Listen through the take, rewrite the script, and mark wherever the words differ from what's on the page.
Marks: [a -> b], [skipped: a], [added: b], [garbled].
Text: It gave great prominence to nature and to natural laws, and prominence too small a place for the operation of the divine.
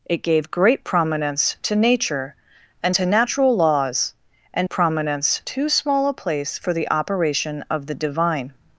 It gave great prominence to nature and to natural laws, and prominence too small a place for the operation of the divine.